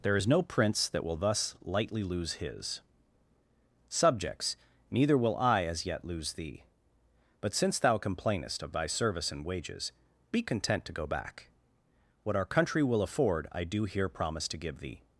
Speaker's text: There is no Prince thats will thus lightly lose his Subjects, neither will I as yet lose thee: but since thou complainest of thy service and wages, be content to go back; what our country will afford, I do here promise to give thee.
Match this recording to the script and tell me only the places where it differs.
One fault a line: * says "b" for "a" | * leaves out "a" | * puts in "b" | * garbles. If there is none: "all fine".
* says "that" for "thats"